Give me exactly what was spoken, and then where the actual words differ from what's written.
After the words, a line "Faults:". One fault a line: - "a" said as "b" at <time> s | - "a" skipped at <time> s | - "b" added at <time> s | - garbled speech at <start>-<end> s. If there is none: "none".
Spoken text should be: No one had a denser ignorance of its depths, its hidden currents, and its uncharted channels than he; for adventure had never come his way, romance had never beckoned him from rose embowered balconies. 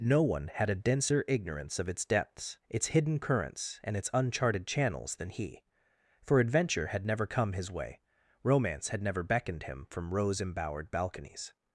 No one had a denser ignorance of its depths, its hidden currents, and its uncharted channels than he; for adventure had never come his way, romance had never beckoned him from rose embowered balconies.
Faults:
none